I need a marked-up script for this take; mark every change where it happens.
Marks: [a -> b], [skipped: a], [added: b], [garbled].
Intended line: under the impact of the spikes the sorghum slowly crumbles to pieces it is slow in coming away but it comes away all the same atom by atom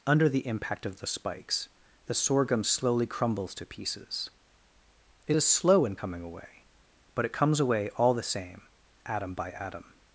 under the impact of the spikes the sorghum slowly crumbles to pieces it is slow in coming away but it comes away all the same atom by atom